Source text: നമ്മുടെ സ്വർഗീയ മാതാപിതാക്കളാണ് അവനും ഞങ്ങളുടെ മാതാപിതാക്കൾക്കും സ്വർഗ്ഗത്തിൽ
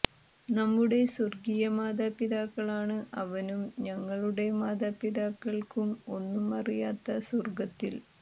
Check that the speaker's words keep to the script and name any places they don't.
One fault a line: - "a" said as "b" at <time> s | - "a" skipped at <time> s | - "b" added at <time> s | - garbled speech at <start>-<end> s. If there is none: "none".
- "ഒന്നും അറിയാത്ത" added at 6.2 s